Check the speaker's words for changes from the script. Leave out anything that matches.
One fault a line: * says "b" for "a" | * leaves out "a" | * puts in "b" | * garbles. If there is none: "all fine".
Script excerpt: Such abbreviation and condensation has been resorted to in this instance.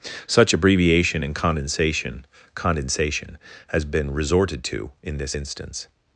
* puts in "condensation"